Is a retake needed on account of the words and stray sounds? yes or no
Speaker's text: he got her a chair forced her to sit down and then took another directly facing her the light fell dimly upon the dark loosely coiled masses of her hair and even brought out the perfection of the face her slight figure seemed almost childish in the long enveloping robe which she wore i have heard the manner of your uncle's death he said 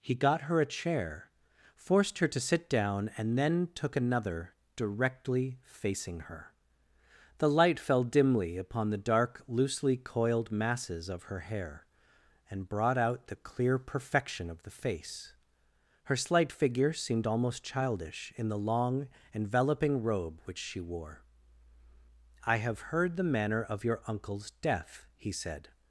yes